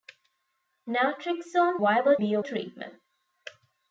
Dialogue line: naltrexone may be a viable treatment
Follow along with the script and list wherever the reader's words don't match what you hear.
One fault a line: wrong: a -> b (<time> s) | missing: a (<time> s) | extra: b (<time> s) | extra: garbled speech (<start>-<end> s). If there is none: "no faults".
wrong: may -> viable (1.8 s)
missing: viable (2.4 s)